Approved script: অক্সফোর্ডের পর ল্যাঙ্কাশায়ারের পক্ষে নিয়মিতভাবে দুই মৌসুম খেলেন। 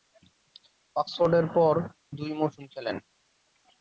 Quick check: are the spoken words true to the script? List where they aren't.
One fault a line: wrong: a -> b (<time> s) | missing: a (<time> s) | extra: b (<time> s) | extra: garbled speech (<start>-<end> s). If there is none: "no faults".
missing: ল্যাঙ্কাশায়ারের পক্ষে নিয়মিতভাবে (1.7 s)